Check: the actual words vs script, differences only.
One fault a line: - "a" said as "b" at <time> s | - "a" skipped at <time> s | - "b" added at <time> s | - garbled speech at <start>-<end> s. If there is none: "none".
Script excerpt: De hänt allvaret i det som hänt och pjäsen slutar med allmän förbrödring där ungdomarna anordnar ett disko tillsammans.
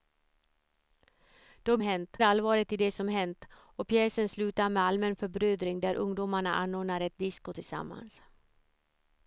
none